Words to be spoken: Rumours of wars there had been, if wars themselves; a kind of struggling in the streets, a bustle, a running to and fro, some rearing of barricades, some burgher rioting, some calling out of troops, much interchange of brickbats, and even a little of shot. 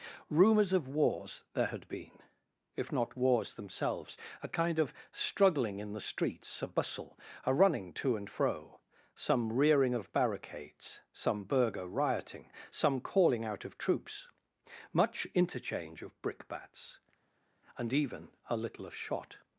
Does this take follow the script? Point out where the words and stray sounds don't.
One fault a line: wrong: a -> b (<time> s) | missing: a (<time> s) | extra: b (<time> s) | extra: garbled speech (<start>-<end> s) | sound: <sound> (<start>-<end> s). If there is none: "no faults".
extra: not (2.9 s)